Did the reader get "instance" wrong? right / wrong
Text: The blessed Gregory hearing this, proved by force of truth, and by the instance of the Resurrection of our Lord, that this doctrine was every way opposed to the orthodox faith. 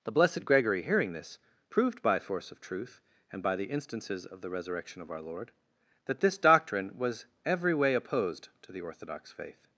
wrong